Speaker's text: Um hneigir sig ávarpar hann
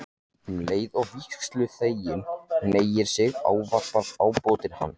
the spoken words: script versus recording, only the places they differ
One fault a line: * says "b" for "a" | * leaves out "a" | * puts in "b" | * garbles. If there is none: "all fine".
* puts in "leið og vígsluþeginn"
* puts in "ábótinn"